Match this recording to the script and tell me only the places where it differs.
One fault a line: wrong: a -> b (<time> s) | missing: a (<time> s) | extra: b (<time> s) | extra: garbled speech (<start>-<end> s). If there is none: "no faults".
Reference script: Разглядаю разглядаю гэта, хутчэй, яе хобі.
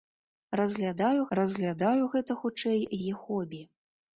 no faults